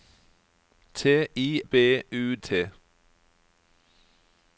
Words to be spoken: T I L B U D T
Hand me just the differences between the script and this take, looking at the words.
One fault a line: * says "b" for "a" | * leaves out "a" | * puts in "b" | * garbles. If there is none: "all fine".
* leaves out "L"
* leaves out "D"